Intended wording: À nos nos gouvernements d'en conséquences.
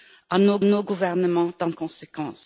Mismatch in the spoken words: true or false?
false